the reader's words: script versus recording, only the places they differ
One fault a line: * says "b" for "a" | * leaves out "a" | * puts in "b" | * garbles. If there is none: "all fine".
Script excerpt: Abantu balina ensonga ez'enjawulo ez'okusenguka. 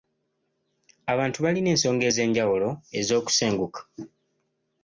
all fine